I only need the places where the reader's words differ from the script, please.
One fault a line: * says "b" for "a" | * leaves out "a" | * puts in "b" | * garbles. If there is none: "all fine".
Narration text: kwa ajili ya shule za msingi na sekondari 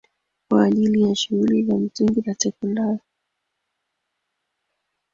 all fine